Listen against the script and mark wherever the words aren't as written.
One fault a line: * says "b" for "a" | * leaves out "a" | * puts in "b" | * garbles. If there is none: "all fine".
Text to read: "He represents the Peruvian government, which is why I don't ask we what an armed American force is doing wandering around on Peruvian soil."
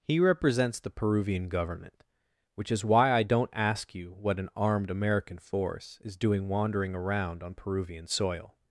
* says "you" for "we"